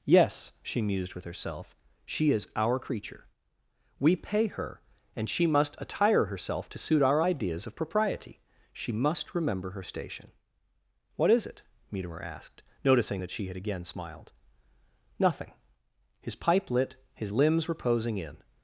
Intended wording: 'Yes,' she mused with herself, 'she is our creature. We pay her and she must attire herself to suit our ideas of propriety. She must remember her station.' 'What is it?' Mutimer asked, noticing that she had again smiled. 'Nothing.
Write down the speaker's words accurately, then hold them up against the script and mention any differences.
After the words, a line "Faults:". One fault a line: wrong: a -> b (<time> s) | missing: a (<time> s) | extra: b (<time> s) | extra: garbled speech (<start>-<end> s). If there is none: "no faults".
'Yes,' she mused with herself, 'she is our creature. We pay her and she must attire herself to suit our ideas of propriety. She must remember her station.' 'What is it?' Mutimer asked, noticing that she had again smiled. 'Nothing. His pipe lit, his limbs reposing in
Faults:
extra: His pipe lit his limbs reposing in (16.2 s)